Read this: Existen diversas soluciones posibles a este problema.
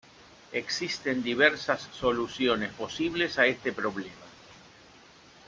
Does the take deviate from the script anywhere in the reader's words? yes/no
no